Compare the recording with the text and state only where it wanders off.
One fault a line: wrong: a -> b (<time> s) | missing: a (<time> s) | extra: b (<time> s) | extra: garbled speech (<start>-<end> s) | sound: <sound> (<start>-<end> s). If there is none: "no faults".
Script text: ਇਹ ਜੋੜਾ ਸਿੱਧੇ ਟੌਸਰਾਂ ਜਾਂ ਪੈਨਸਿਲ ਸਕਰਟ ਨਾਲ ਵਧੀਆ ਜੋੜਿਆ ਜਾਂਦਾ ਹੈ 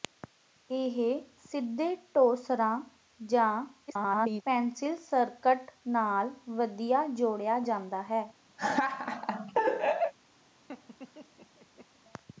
missing: ਜੋੜਾ (0.9 s)
extra: garbled speech (3.9-4.4 s)
sound: laugh (8.6-10.1 s)
sound: laugh (10.7-11.9 s)